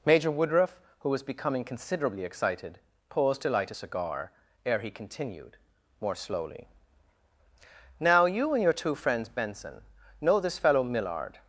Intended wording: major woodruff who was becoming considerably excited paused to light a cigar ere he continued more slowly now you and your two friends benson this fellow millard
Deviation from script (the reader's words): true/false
true